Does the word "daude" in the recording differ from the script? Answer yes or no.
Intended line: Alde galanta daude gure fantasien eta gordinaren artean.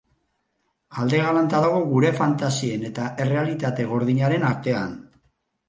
yes